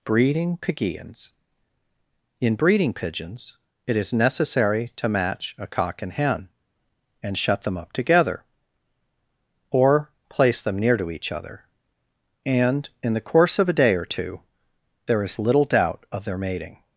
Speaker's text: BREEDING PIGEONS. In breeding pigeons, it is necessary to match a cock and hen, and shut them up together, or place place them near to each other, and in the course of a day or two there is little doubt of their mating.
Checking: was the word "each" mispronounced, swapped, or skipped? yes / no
no